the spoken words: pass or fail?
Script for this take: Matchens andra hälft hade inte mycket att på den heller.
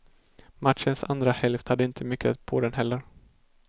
pass